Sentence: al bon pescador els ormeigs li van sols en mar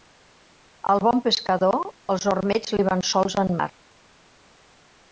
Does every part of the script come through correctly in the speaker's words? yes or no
yes